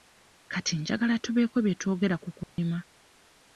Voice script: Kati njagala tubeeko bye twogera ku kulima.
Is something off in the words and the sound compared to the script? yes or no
yes